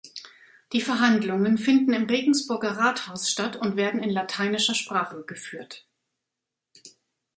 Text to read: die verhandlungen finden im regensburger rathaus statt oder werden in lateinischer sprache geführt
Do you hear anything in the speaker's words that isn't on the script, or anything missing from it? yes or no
yes